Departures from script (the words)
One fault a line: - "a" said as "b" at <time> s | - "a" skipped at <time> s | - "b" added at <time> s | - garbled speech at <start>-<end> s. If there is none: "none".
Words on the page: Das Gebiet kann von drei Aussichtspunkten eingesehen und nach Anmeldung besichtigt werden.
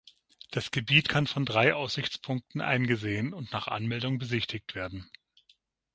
none